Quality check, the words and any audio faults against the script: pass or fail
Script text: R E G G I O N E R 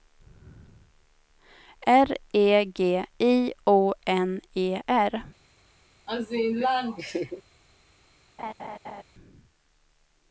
fail